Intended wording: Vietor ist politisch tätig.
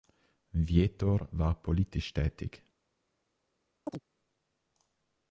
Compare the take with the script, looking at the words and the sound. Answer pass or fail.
fail